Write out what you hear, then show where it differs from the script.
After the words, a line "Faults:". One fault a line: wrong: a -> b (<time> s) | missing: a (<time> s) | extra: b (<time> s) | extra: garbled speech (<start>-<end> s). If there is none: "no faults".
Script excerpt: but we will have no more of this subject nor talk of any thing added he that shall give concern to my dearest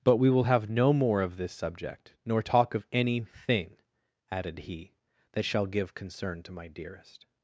but we will have no more of this subject nor talk of any thing added he that shall give concern to my dearest
Faults:
no faults